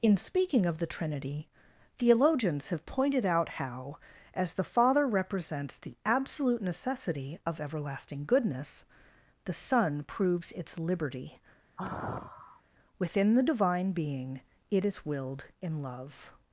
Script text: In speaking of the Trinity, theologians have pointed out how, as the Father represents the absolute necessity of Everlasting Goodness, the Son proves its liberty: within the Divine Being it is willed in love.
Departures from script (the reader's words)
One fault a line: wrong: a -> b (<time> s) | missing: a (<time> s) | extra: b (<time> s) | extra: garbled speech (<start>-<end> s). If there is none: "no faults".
no faults